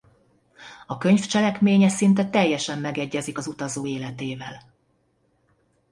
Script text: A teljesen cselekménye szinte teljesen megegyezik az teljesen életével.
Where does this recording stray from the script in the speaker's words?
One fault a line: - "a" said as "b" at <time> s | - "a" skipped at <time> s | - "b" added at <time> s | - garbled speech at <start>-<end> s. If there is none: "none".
- "teljesen" said as "könyv" at 1.0 s
- "teljesen" said as "utazó" at 3.5 s